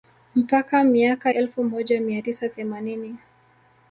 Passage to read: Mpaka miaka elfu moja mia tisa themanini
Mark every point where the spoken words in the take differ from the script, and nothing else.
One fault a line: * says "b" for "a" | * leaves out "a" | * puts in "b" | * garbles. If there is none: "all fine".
all fine